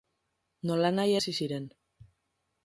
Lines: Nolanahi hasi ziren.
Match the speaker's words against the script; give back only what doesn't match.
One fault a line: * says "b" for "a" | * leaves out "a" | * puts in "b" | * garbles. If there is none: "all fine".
all fine